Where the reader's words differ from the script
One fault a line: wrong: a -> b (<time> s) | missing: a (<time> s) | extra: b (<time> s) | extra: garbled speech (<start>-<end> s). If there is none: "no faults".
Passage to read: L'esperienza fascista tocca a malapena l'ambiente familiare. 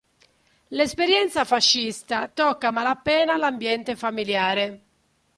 no faults